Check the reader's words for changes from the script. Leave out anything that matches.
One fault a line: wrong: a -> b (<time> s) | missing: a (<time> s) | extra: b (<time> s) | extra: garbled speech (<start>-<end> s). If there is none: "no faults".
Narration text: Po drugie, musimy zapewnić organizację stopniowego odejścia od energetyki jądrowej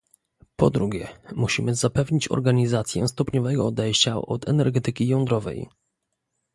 no faults